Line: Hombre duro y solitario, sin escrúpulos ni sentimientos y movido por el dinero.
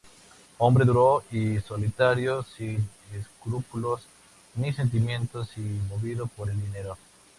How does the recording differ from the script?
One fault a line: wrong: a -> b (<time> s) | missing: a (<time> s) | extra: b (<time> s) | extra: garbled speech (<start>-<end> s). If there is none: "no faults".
no faults